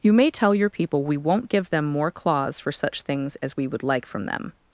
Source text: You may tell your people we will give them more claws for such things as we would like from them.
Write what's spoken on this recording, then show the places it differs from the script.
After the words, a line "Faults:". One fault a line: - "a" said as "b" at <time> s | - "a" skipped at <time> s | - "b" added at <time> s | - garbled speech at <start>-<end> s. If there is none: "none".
You may tell your people we won't give them more claws for such things as we would like from them.
Faults:
- "will" said as "won't" at 1.2 s